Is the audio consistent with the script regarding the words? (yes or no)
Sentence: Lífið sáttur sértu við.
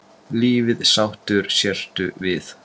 yes